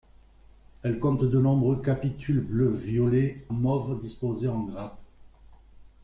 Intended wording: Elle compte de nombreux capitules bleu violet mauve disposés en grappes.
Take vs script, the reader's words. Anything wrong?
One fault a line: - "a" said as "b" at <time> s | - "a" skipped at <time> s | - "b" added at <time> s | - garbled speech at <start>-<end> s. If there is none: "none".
none